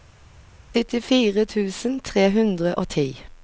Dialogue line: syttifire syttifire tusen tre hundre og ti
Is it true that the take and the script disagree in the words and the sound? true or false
true